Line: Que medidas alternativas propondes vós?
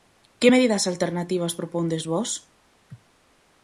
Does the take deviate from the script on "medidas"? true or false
false